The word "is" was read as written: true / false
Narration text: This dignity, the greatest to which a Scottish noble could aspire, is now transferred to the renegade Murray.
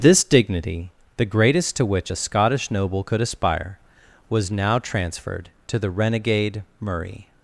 false